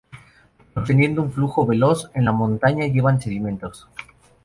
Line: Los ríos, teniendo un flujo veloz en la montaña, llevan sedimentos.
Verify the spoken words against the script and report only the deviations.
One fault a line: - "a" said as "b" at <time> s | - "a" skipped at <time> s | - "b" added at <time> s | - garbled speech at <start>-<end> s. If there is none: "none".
- "ríos" skipped at 0.9 s